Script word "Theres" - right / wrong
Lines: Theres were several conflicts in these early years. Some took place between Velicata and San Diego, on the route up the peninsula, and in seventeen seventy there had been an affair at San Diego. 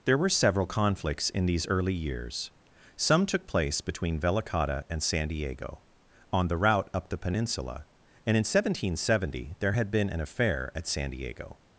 wrong